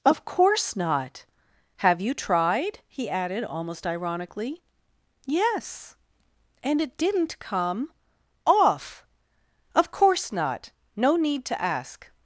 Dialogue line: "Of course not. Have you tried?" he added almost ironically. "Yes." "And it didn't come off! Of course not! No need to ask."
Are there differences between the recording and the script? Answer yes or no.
no